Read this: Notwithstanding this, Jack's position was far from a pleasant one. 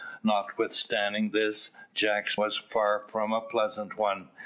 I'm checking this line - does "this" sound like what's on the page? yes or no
yes